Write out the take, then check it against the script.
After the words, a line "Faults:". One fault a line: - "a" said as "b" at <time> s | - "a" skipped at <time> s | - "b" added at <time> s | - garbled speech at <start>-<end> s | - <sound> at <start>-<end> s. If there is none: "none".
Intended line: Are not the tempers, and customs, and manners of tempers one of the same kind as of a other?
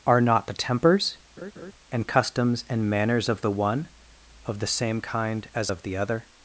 Are not the tempers, and customs, and manners of the one of the same kind as of the other?
Faults:
- laugh at 1.4-1.7 s
- "tempers" said as "the" at 3.4 s
- "a" said as "the" at 5.8 s